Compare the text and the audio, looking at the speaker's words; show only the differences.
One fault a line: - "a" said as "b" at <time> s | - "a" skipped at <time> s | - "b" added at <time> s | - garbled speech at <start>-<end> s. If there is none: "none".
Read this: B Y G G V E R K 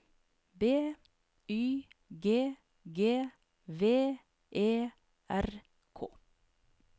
none